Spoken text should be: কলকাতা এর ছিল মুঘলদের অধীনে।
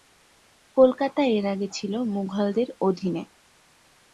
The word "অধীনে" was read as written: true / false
true